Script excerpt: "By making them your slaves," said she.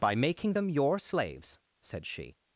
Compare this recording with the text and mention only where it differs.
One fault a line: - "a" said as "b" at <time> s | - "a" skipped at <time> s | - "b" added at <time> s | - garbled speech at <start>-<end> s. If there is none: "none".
none